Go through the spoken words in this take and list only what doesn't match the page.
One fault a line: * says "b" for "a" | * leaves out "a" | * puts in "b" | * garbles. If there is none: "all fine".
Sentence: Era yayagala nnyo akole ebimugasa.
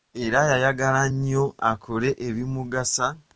all fine